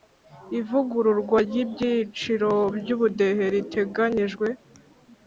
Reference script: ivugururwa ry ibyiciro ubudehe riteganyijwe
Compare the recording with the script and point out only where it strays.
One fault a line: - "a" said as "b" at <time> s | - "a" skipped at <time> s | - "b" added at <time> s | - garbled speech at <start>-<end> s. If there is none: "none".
- "by" added at 2.8 s